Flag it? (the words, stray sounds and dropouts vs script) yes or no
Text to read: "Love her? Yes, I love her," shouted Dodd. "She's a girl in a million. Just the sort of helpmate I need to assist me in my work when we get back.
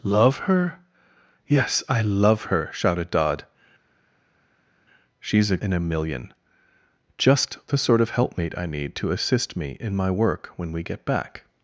yes